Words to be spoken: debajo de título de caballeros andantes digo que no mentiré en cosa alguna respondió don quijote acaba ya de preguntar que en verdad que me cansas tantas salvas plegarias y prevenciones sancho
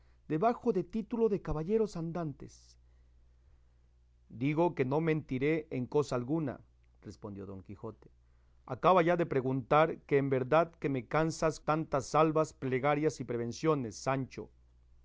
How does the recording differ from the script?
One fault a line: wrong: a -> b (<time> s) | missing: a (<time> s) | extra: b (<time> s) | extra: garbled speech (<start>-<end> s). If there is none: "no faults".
no faults